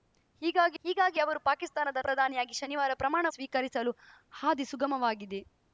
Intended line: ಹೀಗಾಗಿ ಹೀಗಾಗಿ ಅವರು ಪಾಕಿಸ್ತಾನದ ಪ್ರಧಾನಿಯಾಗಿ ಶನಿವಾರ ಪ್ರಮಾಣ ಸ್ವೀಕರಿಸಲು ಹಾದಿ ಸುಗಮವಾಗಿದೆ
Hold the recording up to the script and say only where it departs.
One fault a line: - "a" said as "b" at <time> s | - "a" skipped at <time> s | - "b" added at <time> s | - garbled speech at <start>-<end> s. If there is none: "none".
none